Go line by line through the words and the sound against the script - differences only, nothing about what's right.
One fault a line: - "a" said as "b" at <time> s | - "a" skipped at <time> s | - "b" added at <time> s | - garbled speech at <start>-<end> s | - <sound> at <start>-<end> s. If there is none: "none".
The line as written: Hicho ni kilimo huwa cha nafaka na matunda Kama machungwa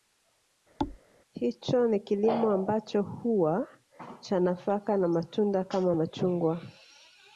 - thud at 0.8-1.0 s
- "ambacho" added at 2.5 s